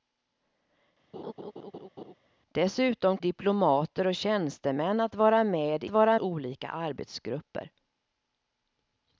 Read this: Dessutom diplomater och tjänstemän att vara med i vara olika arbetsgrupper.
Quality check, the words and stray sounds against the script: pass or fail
fail